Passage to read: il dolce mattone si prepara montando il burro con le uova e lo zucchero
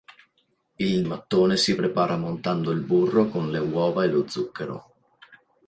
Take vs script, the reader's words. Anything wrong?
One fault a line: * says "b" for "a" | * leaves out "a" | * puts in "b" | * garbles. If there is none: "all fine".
* leaves out "dolce"